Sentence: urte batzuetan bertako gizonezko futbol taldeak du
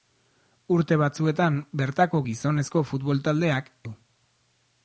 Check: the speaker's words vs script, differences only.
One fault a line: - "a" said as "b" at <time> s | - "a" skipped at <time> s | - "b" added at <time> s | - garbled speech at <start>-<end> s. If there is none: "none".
none